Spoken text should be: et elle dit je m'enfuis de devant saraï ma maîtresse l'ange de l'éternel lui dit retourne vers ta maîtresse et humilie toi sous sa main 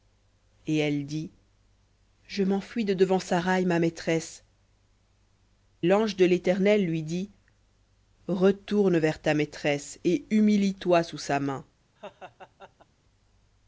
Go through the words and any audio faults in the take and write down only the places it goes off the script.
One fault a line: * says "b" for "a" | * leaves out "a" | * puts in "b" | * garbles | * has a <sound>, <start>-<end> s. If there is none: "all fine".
* has a laugh, 12.0-12.9 s